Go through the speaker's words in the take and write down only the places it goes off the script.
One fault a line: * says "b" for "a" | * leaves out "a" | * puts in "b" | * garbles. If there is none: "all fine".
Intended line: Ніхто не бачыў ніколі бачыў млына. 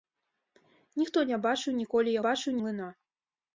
all fine